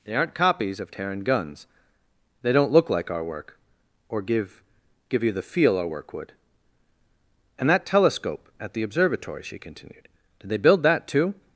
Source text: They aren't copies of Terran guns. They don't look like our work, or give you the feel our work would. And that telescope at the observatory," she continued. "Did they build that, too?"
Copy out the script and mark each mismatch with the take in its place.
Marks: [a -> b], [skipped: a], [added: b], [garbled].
They aren't copies of Terran guns. They don't look like our work, or give [added: give] you the feel our work would. And that telescope at the observatory," she continued. "Did they build that, too?"